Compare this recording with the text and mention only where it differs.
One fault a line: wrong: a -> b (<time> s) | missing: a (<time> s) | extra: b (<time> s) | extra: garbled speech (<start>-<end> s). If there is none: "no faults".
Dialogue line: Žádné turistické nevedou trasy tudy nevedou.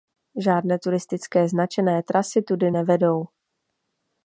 wrong: nevedou -> značené (1.5 s)